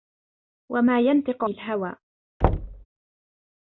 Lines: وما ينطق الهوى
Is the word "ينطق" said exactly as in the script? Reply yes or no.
yes